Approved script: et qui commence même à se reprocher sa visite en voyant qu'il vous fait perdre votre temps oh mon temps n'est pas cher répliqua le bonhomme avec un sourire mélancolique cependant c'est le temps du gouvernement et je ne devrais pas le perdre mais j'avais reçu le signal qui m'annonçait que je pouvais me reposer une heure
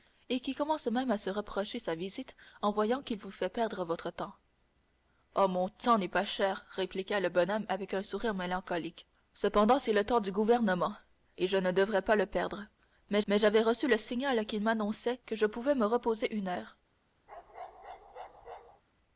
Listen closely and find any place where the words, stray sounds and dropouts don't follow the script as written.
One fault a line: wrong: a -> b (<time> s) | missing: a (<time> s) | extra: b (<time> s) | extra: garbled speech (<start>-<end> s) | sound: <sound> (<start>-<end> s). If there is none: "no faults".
extra: mais (13.3 s)
sound: bark (17.3-18.8 s)